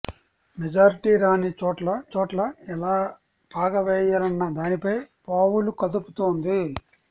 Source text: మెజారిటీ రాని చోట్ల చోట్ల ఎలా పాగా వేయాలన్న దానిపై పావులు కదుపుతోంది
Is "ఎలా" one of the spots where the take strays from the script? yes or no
no